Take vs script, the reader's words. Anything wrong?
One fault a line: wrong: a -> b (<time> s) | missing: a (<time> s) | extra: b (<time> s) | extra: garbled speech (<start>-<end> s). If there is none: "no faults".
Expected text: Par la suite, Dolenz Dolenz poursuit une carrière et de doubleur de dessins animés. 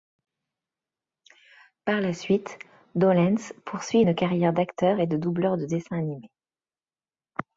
missing: Dolenz (3.5 s)
extra: d'acteur (4.5 s)